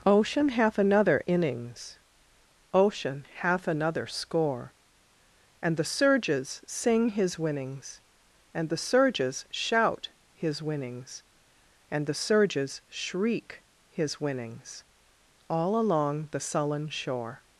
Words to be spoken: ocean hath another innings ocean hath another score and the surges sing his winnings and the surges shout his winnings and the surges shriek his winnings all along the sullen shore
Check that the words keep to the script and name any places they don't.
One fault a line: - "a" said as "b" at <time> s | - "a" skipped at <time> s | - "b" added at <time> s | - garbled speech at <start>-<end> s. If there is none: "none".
none